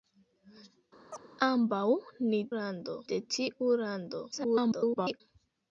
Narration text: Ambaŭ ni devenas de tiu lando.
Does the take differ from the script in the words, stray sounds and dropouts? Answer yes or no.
yes